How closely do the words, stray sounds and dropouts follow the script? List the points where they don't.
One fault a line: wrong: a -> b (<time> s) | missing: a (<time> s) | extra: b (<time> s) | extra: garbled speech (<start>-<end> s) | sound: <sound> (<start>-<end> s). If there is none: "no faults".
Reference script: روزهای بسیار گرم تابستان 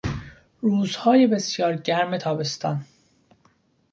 no faults